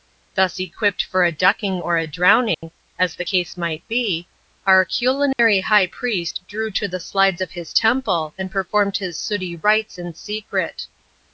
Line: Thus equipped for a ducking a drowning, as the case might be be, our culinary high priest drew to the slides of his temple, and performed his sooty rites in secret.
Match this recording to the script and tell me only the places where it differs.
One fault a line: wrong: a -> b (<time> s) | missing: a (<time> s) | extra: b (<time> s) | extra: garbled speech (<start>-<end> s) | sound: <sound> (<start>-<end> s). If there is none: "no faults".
extra: or (1.8 s)
sound: dropout (2.5-2.6 s)
missing: be (4.3 s)
sound: dropout (5.3-5.4 s)